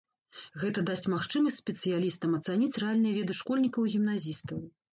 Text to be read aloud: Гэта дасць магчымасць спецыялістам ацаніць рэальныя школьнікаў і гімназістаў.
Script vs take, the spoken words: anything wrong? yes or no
yes